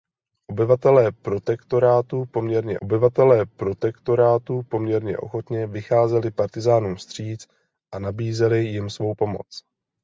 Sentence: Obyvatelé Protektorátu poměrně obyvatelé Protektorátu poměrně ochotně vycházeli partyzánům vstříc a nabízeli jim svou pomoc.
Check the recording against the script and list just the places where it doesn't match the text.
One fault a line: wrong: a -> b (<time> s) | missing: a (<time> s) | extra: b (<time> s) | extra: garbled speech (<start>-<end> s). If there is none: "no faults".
no faults